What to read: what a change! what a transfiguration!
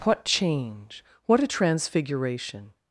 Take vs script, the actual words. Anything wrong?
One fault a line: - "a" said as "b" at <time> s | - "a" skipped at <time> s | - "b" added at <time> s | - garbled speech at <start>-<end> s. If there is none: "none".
- "a" skipped at 0.2 s